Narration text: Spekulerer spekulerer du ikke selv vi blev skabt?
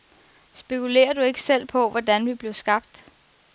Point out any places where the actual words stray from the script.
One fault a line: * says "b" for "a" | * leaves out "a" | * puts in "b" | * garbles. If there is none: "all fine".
* leaves out "spekulerer"
* puts in "på hvordan"